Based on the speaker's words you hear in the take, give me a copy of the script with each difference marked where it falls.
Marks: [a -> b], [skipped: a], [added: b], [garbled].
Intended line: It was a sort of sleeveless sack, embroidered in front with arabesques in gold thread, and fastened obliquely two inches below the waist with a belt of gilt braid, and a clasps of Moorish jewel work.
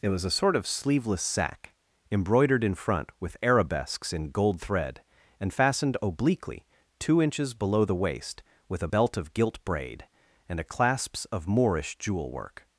It was a sort of sleeveless sack, embroidered in front with arabesques in gold thread, and fastened obliquely two inches below the waist with a belt of gilt braid, and a clasps of Moorish jewel work.